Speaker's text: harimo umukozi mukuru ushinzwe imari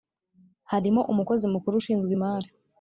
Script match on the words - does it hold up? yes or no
yes